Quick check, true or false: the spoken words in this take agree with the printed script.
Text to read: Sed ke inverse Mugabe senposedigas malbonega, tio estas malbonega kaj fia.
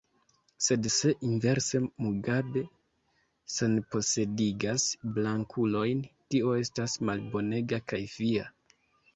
false